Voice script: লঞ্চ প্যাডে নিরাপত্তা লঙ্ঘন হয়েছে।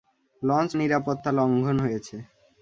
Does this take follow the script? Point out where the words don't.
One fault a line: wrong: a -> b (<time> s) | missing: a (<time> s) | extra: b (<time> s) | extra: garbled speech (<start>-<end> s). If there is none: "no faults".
missing: প্যাডে (0.7 s)